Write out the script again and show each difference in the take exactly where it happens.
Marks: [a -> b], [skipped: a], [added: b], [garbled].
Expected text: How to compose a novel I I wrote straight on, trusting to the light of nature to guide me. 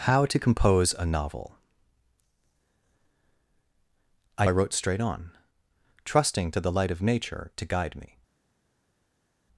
How to compose a novel I I wrote straight on, trusting to the light of nature to guide me.